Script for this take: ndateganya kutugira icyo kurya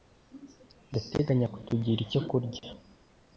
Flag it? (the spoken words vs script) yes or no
no